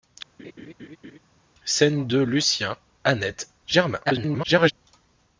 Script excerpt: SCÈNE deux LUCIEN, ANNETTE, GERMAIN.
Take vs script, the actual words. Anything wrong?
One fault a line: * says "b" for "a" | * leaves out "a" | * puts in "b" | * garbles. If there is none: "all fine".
* garbles